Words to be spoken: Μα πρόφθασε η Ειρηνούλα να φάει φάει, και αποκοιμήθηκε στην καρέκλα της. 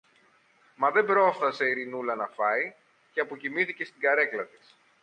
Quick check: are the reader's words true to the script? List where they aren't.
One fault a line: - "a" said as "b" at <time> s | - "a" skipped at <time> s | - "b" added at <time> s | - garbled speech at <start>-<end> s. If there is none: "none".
- "δεν" added at 0.9 s
- "φάει" skipped at 2.7 s